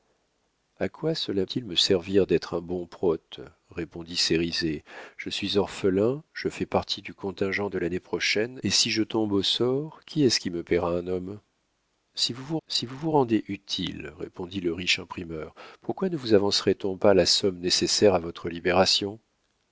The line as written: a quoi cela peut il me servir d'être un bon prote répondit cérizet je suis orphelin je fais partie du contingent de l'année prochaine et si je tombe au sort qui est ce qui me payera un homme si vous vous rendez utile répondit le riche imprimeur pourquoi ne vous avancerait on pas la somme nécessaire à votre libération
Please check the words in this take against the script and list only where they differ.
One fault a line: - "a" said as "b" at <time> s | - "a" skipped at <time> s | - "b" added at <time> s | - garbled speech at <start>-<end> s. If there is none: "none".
- "peut" skipped at 1.4 s
- "si vous vous" added at 12.7 s